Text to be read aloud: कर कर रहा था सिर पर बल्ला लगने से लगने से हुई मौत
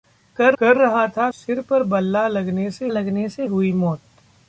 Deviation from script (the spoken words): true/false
false